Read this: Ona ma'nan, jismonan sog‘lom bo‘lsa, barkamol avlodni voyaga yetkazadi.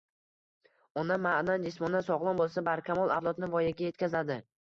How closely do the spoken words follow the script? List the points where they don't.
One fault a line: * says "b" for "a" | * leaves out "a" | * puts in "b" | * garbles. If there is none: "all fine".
all fine